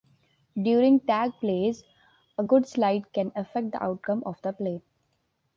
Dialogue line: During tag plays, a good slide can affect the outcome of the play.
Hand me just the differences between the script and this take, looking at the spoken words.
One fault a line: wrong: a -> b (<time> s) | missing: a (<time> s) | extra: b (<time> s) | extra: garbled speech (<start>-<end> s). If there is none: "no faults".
no faults